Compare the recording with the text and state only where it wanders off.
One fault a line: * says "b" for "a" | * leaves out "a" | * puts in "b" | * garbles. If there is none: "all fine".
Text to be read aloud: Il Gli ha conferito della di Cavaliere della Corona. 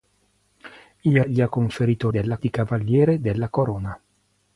all fine